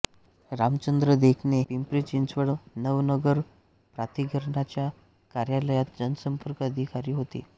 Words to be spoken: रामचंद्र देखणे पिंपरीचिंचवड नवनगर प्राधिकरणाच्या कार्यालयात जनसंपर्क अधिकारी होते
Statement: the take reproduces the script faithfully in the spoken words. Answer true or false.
true